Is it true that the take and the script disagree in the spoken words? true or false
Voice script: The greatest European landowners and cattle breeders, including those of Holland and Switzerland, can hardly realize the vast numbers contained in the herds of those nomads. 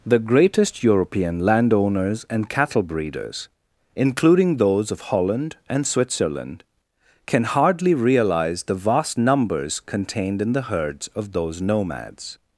false